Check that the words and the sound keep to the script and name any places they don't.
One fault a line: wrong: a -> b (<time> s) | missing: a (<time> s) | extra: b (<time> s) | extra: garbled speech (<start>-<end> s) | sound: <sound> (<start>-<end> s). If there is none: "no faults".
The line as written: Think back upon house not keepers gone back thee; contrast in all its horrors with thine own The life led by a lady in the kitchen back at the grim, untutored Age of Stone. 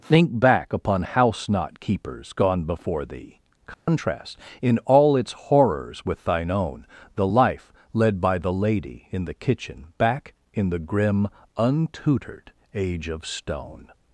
wrong: back -> before (2.6 s)
sound: dropout (3.7-3.9 s)
wrong: a -> the (8.4 s)
wrong: at -> in (10.5 s)